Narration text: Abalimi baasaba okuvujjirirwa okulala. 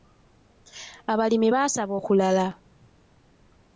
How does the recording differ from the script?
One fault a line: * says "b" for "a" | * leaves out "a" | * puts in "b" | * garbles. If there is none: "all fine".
* leaves out "okuvujjirirwa"